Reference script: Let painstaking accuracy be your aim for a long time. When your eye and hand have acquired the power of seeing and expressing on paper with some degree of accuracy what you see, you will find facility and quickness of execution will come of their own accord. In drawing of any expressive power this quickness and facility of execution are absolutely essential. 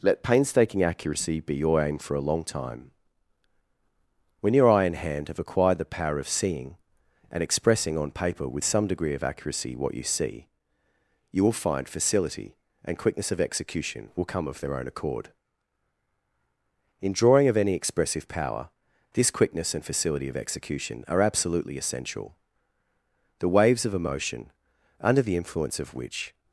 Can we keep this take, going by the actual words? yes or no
no